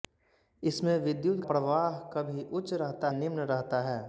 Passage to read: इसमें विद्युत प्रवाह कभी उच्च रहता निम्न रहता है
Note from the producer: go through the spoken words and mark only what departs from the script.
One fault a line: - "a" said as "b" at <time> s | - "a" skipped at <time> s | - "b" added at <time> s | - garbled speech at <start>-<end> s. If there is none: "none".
none